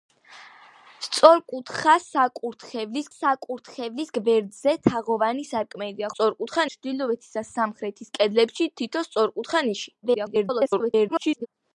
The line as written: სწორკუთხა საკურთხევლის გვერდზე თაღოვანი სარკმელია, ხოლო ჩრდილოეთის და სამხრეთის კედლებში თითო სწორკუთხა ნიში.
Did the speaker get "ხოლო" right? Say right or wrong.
wrong